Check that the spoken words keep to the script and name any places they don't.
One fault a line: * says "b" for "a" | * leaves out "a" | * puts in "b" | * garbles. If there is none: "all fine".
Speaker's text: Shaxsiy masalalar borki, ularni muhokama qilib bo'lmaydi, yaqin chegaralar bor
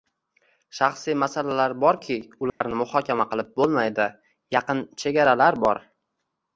all fine